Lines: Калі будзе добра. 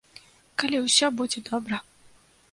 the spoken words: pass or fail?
fail